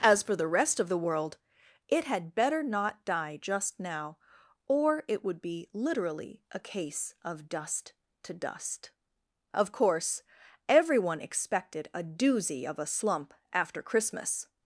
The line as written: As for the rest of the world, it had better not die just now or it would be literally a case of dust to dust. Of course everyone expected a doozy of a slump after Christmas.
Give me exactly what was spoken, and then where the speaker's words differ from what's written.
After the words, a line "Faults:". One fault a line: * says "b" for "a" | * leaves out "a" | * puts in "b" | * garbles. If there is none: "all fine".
As for the rest of the world, it had better not die just now or it would be literally a case of dust to dust. Of course everyone expected a doozy of a slump after Christmas.
Faults:
all fine